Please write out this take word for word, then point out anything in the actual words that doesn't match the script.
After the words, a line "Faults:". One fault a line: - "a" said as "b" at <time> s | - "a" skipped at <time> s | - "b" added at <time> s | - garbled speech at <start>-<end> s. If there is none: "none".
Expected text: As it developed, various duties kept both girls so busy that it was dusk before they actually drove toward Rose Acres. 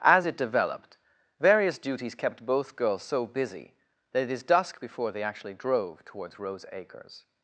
As it developed, various duties kept both girls so busy that it is dusk before they actually drove towards Rose Acres.
Faults:
- "was" said as "is" at 4.3 s
- "toward" said as "towards" at 6.0 s